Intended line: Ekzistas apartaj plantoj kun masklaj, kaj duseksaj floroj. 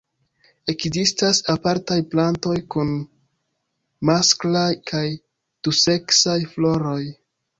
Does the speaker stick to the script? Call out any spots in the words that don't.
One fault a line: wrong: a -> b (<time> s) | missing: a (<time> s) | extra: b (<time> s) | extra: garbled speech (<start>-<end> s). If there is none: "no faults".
no faults